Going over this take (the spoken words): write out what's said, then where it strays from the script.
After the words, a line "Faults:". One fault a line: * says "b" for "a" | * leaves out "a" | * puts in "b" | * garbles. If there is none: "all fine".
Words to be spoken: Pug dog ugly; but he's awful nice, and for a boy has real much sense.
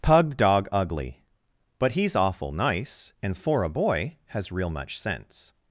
Pug dog ugly; but he's awful nice, and for a boy has real much sense.
Faults:
all fine